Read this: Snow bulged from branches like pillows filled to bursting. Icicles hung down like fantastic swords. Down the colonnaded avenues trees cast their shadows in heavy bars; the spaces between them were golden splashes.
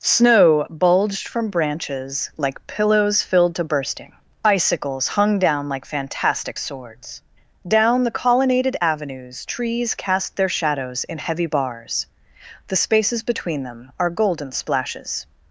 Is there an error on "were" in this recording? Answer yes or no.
yes